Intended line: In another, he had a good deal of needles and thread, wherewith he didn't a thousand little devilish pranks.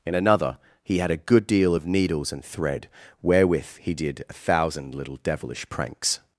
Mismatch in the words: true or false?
true